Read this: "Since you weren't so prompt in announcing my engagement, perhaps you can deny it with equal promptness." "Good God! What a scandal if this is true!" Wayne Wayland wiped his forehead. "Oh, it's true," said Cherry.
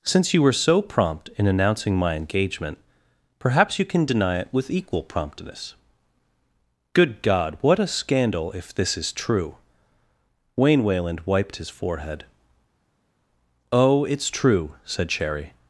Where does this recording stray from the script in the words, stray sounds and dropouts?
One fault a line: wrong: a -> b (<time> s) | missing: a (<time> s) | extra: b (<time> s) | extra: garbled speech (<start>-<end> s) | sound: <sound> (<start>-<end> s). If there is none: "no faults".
wrong: weren't -> were (0.4 s)